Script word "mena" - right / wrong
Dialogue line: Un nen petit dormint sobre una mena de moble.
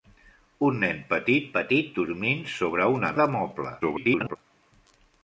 wrong